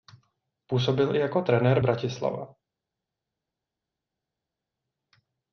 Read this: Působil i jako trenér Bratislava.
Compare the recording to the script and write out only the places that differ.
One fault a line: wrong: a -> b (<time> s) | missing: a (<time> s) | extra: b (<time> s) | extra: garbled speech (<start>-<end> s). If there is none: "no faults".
no faults